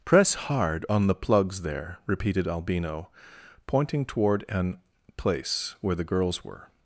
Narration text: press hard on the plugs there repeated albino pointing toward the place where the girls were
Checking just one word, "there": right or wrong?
right